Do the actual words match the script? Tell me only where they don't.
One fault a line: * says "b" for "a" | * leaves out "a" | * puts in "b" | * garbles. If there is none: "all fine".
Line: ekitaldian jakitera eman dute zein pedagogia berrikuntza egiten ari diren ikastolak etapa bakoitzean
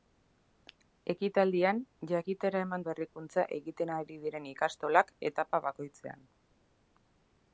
* leaves out "dute zein pedagogia"